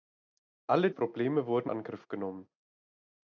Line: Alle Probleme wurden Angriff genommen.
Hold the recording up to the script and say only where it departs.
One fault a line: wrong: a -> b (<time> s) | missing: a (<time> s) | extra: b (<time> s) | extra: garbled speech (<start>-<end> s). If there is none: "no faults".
no faults